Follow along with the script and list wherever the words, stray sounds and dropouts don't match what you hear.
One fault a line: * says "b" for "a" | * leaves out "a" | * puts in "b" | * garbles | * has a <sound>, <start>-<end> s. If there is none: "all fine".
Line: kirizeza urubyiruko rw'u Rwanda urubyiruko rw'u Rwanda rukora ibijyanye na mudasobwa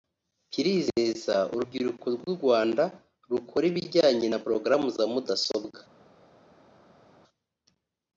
* leaves out "urubyiruko rw'u Rwanda"
* puts in "porogaramu za"